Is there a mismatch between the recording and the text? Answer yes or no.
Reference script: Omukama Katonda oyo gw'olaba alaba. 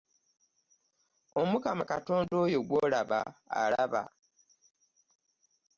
no